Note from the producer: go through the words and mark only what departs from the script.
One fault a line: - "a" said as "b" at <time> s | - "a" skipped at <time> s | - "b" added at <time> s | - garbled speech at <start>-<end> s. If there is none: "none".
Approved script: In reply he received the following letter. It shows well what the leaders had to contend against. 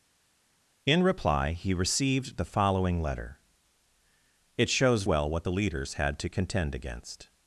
none